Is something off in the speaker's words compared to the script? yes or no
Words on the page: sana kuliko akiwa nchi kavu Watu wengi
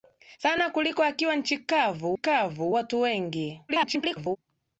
yes